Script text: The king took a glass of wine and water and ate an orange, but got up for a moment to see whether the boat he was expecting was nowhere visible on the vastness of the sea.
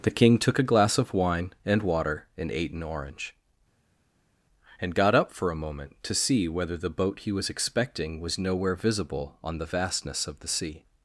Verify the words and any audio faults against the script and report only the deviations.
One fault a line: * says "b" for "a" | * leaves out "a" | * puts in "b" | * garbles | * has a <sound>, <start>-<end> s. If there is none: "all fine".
* says "and" for "but"